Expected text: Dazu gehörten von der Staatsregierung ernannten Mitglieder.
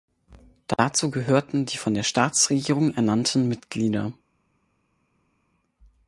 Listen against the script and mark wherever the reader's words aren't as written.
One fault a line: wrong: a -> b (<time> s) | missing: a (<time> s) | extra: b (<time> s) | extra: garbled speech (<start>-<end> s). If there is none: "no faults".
extra: die (1.7 s)